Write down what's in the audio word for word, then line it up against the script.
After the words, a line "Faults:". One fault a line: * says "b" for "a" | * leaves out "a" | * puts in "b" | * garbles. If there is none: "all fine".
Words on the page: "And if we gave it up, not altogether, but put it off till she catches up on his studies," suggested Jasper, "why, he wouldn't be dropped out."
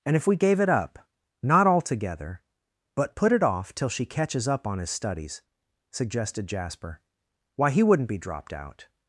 "And if we gave it up, not altogether, but put it off till she catches up on his studies," suggested Jasper, "why, he wouldn't be dropped out."
Faults:
all fine